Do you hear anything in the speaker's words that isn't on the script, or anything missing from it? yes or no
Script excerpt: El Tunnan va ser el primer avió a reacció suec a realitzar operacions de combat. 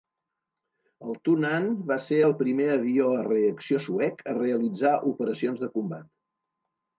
no